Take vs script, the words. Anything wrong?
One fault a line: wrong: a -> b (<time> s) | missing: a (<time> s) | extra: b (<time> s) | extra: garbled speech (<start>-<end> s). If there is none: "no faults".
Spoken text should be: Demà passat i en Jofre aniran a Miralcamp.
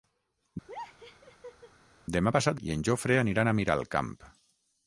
no faults